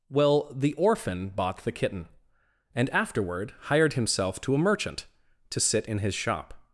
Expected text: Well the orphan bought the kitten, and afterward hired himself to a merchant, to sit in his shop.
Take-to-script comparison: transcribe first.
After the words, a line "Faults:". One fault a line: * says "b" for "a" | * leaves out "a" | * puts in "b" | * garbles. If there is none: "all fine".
Well the orphan bought the kitten, and afterward hired himself to a merchant, to sit in his shop.
Faults:
all fine